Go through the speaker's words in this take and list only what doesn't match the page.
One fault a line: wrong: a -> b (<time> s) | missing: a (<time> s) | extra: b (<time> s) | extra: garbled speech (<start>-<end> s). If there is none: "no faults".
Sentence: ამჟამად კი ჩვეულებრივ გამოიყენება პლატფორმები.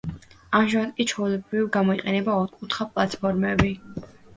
extra: ოთხკუთხა (2.4 s)